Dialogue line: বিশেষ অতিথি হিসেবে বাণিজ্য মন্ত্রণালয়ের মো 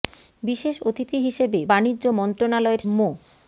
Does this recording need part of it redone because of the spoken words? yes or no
no